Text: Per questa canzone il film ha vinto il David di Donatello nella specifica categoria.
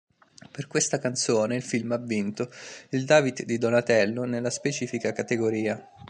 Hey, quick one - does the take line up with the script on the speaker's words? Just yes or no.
yes